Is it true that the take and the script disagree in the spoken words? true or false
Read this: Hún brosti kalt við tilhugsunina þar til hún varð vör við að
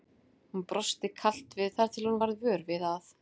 true